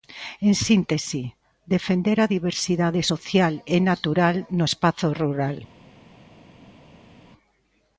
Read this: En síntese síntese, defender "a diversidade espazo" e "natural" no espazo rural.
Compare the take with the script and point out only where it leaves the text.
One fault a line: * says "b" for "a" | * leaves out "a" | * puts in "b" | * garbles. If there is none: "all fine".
* leaves out "síntese"
* says "social" for "espazo"